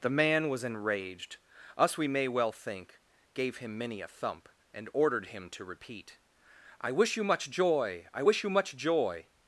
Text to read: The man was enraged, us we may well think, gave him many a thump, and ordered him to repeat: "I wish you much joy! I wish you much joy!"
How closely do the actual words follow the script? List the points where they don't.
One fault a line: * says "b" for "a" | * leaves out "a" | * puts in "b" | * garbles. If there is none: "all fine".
all fine